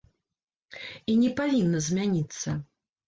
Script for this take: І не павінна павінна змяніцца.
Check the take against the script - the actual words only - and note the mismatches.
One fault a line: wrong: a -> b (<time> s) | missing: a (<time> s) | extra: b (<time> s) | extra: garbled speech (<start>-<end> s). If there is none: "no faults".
missing: павінна (1.8 s)